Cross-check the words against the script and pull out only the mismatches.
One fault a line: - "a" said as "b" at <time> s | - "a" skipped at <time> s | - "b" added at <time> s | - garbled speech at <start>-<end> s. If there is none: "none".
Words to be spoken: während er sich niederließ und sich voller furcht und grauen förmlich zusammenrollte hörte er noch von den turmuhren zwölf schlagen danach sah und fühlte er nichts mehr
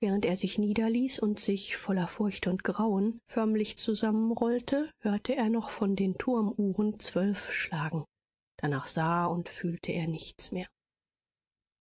none